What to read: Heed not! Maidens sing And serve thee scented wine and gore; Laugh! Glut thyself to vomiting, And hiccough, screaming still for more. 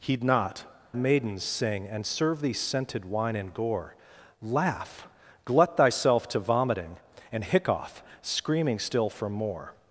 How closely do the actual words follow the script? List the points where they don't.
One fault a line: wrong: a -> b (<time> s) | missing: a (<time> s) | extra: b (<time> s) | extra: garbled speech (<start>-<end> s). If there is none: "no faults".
no faults